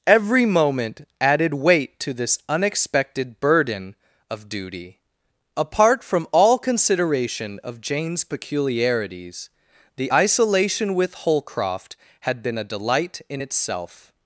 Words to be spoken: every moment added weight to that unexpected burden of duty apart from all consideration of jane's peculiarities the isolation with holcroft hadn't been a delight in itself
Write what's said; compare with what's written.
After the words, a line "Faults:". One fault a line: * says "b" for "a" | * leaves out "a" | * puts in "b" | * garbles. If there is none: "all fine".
every moment added weight to this unexpected burden of duty apart from all consideration of jane's peculiarities the isolation with holcroft had been a delight in itself
Faults:
* says "this" for "that"
* says "had" for "hadn't"